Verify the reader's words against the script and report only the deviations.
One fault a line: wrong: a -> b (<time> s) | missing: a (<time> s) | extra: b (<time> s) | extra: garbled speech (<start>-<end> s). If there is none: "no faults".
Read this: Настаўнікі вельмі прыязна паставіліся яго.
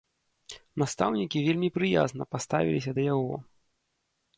extra: да (3.0 s)